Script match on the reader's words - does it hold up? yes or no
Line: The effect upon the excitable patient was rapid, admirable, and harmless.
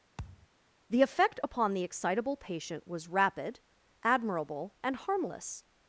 yes